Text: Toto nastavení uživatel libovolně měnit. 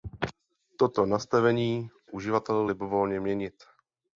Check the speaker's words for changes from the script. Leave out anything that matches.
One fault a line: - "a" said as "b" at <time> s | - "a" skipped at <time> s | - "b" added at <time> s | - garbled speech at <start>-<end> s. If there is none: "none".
none